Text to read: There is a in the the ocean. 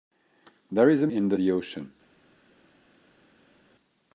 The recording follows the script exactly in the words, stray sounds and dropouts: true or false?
true